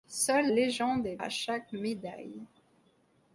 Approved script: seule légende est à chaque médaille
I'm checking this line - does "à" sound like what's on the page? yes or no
yes